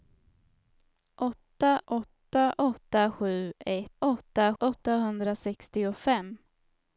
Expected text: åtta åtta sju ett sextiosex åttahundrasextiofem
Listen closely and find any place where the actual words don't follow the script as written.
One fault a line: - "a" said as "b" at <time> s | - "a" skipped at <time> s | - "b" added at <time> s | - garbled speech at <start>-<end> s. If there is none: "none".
- "åtta" added at 2.6 s
- "sextiosex" said as "åtta" at 4.0 s